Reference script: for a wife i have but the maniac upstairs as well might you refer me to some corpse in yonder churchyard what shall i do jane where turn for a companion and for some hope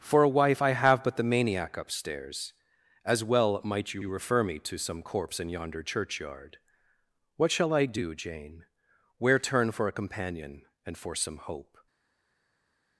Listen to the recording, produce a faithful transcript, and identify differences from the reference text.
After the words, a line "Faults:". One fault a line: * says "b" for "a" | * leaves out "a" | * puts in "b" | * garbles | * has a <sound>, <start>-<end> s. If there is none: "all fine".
for a wife i have but the maniac upstairs as well might you you refer me to some corpse in yonder churchyard what shall i do jane where turn for a companion and for some hope
Faults:
* puts in "you"